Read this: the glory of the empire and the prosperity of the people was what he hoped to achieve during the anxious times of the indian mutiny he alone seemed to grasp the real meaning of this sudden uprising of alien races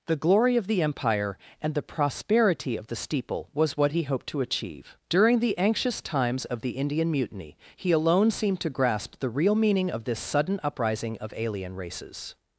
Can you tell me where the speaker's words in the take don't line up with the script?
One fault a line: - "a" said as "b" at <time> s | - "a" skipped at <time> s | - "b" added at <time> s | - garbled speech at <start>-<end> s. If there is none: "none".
- "people" said as "steeple" at 3.0 s